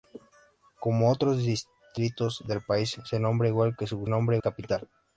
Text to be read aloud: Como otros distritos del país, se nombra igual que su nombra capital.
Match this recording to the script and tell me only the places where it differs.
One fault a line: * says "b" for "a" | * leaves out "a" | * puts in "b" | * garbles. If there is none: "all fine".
all fine